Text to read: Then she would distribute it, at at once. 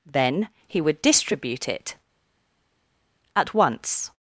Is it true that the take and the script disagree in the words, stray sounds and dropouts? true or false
true